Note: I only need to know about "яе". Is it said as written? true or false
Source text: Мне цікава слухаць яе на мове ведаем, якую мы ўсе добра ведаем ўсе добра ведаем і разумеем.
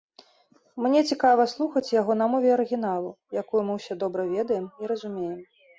false